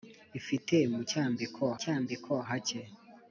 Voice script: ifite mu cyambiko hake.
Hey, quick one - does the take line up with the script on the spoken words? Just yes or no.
no